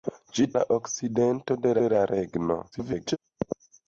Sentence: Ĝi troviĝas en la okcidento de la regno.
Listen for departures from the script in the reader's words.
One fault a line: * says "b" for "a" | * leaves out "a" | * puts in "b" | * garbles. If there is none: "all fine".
* leaves out "troviĝas en"
* puts in "de"
* garbles